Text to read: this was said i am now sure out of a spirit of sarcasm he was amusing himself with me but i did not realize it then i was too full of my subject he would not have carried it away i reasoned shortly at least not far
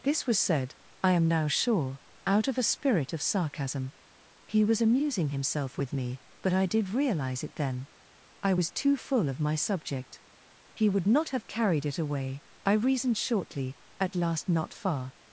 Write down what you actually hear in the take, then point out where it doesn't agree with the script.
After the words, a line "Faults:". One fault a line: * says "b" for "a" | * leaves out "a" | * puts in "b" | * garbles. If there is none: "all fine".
this was said i am now sure out of a spirit of sarcasm he was amusing himself with me but i did realize it then i was too full of my subject he would not have carried it away i reasoned shortly at last not far
Faults:
* leaves out "not"
* says "last" for "least"